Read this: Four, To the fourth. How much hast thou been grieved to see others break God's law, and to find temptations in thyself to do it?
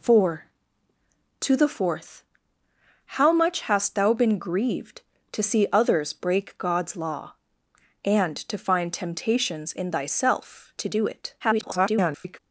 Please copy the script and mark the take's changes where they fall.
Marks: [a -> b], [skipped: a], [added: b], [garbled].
Four, To the fourth. How much hast thou been grieved to see others break God's law, and to find temptations in thyself to do it? [garbled]